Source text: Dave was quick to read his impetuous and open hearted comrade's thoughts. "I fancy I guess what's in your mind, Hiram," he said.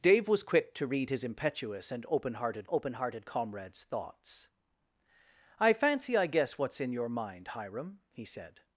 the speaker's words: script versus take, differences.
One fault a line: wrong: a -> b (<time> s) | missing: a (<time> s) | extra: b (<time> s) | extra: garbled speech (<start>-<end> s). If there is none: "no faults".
extra: open hearted (2.7 s)